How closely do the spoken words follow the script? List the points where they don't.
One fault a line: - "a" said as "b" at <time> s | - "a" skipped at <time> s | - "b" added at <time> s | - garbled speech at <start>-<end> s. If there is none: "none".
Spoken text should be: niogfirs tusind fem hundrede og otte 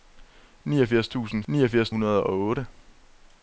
- "fem" said as "niogfirs" at 1.5 s